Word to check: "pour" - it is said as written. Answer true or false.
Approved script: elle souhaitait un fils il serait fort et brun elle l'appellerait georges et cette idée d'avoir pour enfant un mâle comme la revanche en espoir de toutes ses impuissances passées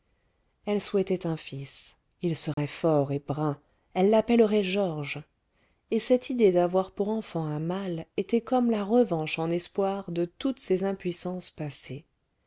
true